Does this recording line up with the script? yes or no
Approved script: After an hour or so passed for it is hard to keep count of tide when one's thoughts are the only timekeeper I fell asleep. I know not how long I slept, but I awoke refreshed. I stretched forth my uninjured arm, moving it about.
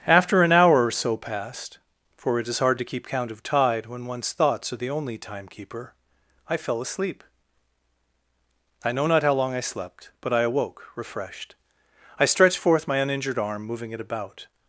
yes